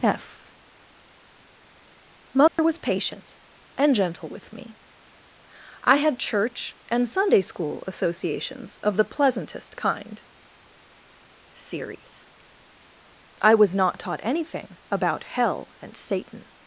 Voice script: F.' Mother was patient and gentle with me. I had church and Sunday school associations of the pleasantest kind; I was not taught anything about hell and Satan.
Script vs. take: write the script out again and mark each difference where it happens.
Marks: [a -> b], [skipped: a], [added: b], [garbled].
F.' Mother was patient and gentle with me. I had church and Sunday school associations of the pleasantest kind; [added: series] I was not taught anything about hell and Satan.